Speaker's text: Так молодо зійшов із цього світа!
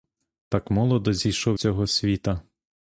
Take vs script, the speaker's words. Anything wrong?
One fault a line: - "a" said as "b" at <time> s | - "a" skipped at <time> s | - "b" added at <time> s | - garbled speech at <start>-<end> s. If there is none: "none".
- "із" skipped at 1.6 s